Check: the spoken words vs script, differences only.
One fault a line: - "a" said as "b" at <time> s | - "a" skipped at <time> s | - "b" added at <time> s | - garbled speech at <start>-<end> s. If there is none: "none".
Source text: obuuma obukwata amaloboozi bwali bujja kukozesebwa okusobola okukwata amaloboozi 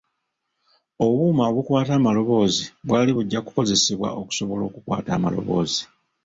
none